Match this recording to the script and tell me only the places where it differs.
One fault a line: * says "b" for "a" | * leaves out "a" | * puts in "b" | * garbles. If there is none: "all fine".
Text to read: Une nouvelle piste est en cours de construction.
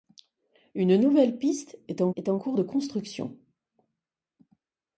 * puts in "est en"